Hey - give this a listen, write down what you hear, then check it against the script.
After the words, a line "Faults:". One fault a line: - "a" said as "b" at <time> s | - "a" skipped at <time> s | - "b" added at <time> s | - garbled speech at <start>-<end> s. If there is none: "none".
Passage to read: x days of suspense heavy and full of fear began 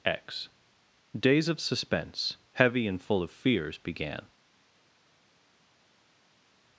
x days of suspense heavy and full of fears began
Faults:
- "fear" said as "fears" at 3.3 s